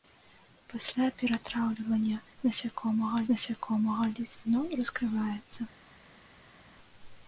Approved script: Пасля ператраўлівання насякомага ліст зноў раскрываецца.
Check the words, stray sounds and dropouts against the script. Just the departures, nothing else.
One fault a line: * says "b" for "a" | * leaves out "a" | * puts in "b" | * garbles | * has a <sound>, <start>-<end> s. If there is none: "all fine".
* puts in "насякомага"